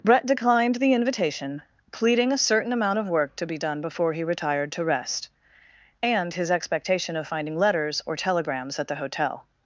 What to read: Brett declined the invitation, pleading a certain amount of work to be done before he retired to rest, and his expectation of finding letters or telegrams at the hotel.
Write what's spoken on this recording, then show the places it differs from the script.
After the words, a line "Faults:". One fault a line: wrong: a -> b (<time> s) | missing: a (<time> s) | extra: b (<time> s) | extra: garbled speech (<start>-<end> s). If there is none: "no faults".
Brett declined the invitation, pleading a certain amount of work to be done before he retired to rest, and his expectation of finding letters or telegrams at the hotel.
Faults:
no faults